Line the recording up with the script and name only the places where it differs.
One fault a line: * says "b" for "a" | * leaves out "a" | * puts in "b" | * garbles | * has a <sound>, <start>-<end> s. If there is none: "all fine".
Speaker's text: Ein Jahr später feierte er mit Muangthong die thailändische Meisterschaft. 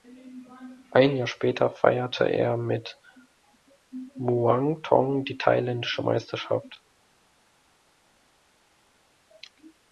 all fine